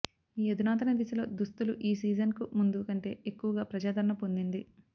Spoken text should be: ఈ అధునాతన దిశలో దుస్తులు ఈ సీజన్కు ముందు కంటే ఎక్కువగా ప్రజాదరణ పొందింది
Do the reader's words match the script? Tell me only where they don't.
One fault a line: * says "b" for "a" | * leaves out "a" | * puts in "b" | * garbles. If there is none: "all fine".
all fine